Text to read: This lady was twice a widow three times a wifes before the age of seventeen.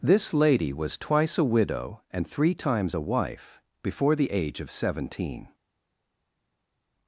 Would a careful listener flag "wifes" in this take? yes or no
yes